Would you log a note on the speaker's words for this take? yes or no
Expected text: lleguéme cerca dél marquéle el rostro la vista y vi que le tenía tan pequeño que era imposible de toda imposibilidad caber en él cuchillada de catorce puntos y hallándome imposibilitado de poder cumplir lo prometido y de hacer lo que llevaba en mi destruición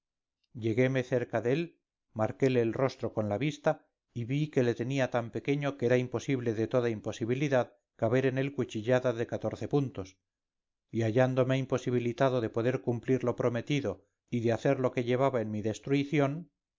yes